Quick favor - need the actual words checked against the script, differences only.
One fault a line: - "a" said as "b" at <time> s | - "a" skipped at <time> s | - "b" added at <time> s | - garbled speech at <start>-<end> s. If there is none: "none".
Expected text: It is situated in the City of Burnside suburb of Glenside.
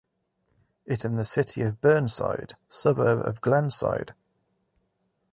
- "is situated" skipped at 1.0 s